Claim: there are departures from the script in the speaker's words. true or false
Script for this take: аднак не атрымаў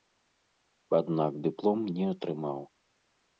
true